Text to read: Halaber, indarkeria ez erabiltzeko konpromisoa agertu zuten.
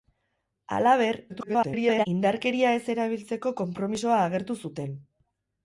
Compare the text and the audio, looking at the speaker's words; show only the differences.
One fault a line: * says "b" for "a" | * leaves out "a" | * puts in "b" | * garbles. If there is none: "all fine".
* garbles